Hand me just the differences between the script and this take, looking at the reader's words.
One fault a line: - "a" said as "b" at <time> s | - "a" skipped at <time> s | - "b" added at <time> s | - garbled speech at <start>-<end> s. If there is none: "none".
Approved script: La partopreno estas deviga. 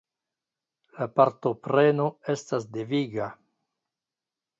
none